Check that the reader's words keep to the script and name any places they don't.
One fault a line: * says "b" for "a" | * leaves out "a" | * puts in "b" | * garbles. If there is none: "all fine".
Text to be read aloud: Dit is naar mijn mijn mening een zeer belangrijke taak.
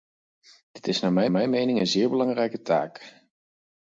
all fine